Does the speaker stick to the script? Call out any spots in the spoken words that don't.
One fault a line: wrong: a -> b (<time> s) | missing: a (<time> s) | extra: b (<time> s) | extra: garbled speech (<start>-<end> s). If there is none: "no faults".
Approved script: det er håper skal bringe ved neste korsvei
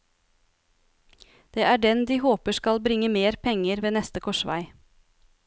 extra: den de (1.8 s)
extra: mer penger (3.1 s)